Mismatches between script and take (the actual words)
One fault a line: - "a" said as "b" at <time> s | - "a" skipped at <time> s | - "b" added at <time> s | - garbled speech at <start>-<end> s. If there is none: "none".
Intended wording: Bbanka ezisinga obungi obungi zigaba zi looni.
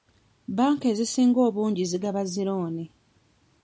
- "obungi" skipped at 1.8 s